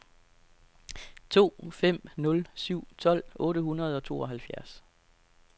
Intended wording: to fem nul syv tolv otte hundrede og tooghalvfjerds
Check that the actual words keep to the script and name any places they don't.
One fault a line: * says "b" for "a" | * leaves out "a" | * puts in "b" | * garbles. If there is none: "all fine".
all fine